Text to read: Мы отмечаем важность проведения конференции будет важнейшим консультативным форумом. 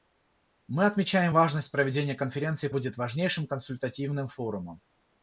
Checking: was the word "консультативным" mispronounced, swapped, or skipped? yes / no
no